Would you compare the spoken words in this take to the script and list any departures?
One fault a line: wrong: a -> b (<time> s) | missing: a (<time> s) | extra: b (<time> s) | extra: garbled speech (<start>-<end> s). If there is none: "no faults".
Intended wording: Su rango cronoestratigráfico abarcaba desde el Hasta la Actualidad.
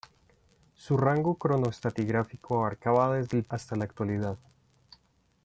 no faults